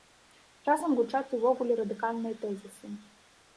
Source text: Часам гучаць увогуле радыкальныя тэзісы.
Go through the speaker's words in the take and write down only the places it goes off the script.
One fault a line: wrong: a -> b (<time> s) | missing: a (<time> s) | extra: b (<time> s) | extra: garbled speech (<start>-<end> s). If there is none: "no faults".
no faults